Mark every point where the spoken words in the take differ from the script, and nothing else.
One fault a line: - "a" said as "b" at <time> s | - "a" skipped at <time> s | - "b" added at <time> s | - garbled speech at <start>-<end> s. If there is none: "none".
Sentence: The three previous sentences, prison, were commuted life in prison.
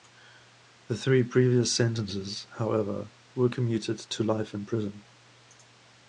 - "prison" said as "however" at 2.6 s
- "to" added at 4.0 s